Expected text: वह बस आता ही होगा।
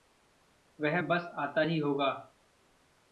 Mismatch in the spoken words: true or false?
false